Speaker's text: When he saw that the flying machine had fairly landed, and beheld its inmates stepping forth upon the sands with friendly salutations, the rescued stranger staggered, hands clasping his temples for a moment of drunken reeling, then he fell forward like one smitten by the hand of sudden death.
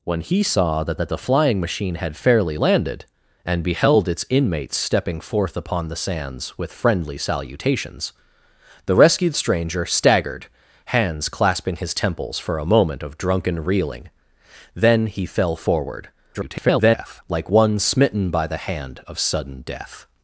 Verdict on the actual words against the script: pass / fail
fail